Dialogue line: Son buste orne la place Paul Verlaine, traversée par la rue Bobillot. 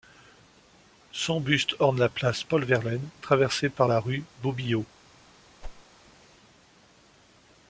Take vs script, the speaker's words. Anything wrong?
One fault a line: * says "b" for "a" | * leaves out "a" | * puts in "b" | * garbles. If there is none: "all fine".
all fine